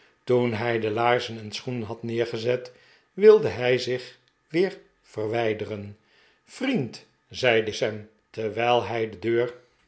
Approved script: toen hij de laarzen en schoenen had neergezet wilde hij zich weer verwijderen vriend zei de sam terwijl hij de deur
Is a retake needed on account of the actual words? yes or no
no